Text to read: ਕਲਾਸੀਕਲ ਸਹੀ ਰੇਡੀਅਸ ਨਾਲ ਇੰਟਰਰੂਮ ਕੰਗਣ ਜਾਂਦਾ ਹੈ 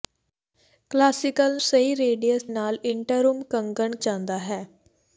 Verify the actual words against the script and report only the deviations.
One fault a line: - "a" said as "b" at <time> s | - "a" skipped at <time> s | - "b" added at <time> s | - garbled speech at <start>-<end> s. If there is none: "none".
none